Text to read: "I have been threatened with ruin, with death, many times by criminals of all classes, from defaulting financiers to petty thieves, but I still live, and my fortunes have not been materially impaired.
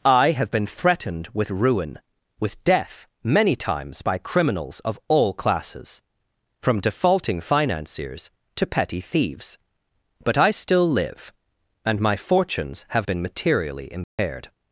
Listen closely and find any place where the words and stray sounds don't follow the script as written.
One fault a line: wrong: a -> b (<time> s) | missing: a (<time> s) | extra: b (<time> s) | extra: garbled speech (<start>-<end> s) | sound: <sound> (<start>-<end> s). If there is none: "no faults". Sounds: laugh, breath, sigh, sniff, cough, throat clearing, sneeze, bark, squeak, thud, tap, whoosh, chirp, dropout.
missing: not (13.1 s)
sound: dropout (14.0-14.2 s)